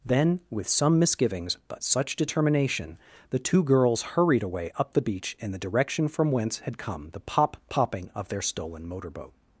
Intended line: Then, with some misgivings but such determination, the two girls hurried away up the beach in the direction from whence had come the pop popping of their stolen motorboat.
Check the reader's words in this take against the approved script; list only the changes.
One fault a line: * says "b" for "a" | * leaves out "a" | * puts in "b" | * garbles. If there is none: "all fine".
all fine